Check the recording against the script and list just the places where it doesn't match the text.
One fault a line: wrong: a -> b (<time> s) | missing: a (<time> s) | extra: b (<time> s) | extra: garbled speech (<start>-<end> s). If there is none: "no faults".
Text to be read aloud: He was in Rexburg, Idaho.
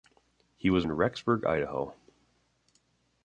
no faults